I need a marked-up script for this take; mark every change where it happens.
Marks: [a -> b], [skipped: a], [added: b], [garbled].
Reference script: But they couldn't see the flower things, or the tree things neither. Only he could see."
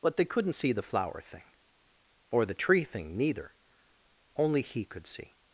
But they couldn't see the flower [things, -> thing] or the tree [things -> thing] neither. Only he could see."